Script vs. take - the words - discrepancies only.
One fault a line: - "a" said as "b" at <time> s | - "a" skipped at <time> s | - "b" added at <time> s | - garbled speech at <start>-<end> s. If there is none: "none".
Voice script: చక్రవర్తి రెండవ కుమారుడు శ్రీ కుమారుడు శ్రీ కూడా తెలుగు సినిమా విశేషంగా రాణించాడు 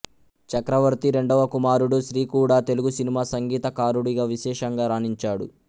- "కుమారుడు శ్రీ" skipped at 2.2 s
- "సంగీతకారుడిగా" added at 3.3 s